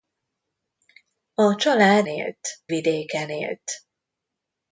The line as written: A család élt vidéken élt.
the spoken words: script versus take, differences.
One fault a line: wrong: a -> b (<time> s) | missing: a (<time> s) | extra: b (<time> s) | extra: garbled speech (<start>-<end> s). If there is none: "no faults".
no faults